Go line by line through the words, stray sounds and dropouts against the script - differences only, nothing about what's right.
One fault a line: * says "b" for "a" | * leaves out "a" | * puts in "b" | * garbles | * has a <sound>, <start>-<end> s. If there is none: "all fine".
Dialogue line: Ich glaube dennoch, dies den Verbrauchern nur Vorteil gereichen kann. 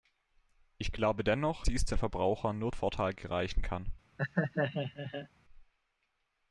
* has a laugh, 4.2-5.3 s